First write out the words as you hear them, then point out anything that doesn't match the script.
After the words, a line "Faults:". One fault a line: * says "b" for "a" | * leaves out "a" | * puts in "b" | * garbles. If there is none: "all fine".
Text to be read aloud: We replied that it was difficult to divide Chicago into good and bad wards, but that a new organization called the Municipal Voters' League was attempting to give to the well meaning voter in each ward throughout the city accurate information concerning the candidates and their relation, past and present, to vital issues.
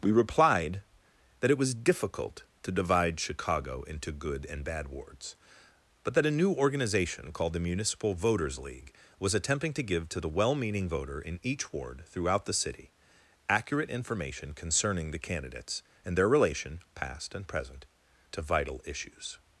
We replied that it was difficult to divide Chicago into good and bad wards, but that a new organization called the Municipal Voters' League was attempting to give to the well meaning voter in each ward throughout the city accurate information concerning the candidates and their relation, past and present, to vital issues.
Faults:
all fine